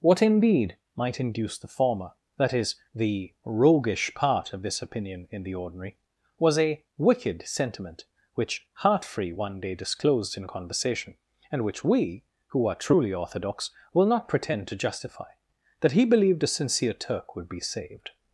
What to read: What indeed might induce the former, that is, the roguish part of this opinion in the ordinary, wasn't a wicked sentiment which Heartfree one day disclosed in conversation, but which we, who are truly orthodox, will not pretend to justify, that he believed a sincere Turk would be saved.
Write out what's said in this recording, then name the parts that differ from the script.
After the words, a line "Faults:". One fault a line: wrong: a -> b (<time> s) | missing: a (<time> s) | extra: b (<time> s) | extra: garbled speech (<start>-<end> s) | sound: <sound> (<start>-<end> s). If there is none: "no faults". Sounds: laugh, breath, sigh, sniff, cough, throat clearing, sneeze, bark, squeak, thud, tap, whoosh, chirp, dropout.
What indeed might induce the former, that is, the roguish part of this opinion in the ordinary, was a wicked sentiment which Heartfree one day disclosed in conversation, and which we, who are truly orthodox, will not pretend to justify, that he believed a sincere Turk would be saved.
Faults:
wrong: wasn't -> was (6.4 s)
wrong: but -> and (11.5 s)